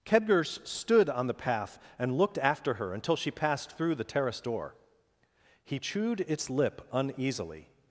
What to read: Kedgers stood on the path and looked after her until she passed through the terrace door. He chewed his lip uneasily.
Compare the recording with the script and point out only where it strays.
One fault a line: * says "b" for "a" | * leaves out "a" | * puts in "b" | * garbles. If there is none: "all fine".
* says "its" for "his"